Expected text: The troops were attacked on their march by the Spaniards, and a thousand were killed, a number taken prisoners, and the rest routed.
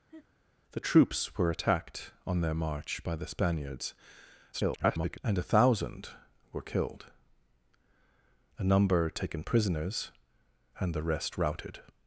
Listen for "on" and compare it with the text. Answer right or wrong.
right